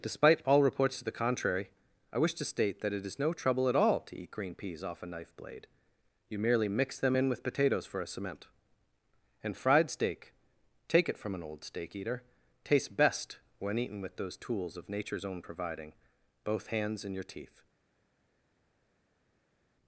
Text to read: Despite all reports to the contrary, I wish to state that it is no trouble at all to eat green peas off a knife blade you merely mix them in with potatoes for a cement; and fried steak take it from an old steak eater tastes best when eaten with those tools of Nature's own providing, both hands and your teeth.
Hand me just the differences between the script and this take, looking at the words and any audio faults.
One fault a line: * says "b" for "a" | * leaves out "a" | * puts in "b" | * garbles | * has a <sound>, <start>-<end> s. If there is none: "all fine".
all fine